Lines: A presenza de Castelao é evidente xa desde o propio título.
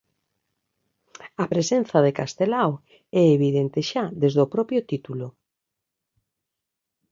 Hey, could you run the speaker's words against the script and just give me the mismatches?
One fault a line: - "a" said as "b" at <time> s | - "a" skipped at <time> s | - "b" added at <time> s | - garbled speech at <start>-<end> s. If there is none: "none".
none